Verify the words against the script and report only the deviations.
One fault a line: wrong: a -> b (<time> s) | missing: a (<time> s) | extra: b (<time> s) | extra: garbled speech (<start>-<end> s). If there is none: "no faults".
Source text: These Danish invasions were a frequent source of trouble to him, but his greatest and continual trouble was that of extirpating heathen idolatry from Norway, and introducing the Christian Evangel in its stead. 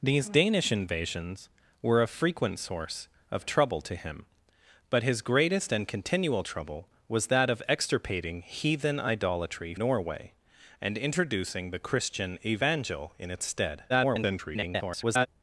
missing: from (9.8 s)
extra: garbled speech (13.9-15.3 s)